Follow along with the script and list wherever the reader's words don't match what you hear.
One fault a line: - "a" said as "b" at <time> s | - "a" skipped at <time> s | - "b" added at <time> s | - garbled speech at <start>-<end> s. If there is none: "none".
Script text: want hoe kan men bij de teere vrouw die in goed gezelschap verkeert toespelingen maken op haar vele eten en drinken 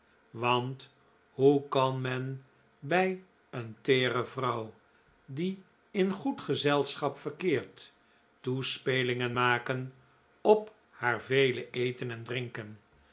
- "de" said as "een" at 3.5 s